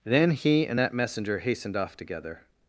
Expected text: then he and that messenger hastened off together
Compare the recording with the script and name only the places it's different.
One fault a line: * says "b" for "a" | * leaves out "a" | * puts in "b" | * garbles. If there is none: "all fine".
all fine